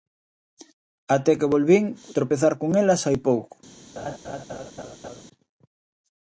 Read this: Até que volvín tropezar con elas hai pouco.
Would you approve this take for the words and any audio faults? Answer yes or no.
no